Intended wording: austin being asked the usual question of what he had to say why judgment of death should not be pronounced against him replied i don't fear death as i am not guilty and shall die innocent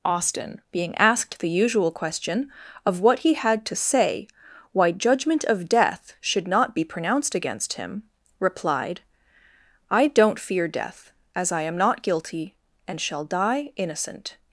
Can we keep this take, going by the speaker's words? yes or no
yes